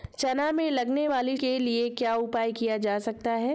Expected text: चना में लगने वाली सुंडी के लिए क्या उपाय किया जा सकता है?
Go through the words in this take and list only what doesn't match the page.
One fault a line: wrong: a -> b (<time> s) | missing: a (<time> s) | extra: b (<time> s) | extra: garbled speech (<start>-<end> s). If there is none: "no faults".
missing: सुंडी (1.4 s)